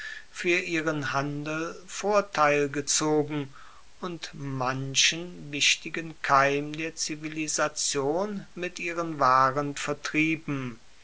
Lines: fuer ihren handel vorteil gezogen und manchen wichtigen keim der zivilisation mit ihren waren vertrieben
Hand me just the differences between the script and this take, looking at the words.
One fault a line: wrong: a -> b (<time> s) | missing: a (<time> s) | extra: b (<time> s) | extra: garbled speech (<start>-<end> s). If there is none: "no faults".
no faults